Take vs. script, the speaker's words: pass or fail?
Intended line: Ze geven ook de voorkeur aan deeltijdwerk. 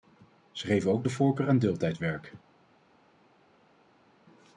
pass